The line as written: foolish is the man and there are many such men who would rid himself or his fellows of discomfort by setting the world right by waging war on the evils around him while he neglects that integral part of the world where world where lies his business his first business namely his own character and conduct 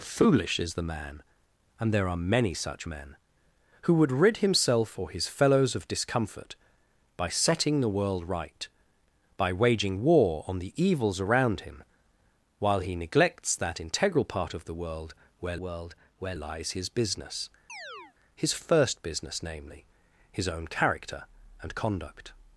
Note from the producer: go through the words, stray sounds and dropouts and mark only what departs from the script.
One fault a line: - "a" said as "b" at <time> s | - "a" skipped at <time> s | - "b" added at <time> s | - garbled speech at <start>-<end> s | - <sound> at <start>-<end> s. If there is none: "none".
- chirp at 17.7-18.2 s